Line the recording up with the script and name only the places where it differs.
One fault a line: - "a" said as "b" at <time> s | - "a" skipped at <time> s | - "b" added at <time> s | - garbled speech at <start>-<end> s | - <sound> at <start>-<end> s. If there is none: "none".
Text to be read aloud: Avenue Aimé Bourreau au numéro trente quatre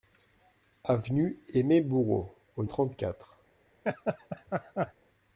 - "numéro" skipped at 2.6 s
- laugh at 3.8-4.9 s